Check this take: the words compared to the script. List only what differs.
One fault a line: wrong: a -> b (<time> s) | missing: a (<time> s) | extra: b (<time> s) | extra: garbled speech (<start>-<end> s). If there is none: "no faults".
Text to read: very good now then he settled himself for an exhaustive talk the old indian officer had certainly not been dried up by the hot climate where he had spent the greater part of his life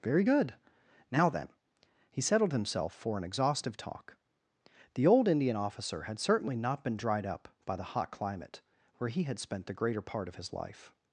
no faults